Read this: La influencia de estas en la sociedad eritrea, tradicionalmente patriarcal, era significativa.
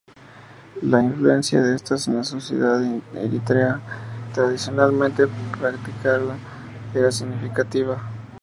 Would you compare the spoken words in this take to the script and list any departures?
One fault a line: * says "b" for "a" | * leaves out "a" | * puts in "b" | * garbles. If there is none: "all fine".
all fine